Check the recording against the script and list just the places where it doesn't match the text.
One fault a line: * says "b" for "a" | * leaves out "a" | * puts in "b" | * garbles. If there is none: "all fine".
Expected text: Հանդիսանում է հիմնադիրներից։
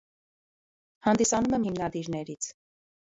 all fine